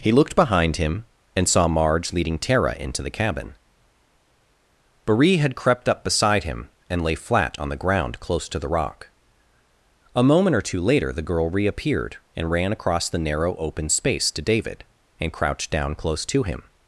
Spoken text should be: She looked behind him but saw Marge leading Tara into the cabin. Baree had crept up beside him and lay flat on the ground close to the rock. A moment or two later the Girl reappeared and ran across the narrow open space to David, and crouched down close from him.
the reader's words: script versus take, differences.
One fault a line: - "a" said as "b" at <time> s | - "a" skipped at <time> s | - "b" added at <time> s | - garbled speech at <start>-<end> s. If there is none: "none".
- "She" said as "He" at 0.0 s
- "but" said as "and" at 1.4 s
- "from" said as "to" at 16.3 s